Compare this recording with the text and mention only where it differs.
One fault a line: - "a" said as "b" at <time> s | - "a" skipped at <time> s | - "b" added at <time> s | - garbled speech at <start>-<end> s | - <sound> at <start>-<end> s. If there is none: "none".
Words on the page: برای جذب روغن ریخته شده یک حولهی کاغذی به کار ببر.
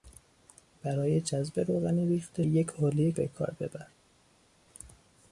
- "شده" skipped at 2.4 s
- "کاغذی" skipped at 3.1 s